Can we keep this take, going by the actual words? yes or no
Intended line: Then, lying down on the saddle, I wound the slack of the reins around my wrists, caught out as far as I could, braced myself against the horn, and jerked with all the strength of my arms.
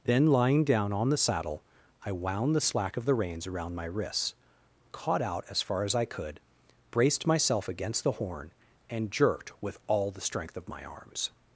yes